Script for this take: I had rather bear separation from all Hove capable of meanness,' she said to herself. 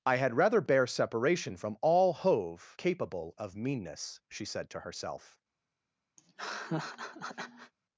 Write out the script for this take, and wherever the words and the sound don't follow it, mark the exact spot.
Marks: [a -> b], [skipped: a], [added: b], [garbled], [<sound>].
I had rather bear separation from all Hove capable of meanness,' she said to herself. [laugh]